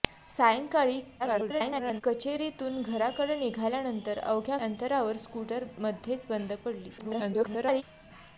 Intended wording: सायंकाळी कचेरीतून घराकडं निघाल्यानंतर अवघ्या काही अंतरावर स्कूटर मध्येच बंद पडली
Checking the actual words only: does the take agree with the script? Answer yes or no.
no